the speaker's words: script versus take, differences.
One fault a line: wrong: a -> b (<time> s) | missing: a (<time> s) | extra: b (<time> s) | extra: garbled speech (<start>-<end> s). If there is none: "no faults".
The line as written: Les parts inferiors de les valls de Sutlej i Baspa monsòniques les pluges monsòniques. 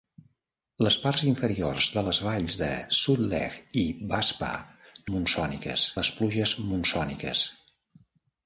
no faults